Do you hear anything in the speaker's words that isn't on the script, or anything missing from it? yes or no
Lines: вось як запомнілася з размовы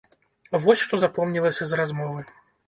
yes